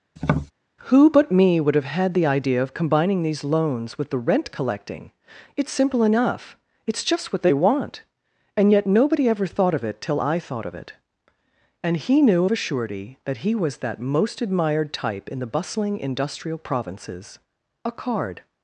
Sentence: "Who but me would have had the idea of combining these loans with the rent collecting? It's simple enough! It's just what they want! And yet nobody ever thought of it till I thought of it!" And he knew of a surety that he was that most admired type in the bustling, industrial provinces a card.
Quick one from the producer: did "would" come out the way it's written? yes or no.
yes